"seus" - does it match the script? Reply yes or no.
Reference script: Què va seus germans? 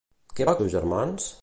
yes